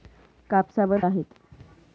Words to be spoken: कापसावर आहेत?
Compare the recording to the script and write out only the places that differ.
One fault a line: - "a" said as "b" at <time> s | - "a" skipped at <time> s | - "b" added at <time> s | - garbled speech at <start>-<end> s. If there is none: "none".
none